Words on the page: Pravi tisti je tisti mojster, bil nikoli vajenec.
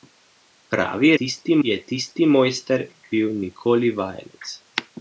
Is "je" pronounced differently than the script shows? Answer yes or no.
no